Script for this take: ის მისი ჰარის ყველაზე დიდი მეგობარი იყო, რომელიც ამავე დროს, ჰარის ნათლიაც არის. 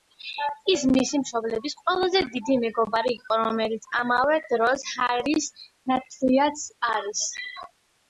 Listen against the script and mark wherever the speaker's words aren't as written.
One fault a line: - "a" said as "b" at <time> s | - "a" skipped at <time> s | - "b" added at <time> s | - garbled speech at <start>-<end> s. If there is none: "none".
- "ჰარის" said as "მშობლების" at 1.2 s